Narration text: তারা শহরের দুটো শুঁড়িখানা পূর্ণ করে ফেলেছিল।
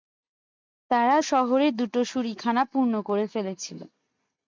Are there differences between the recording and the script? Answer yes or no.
no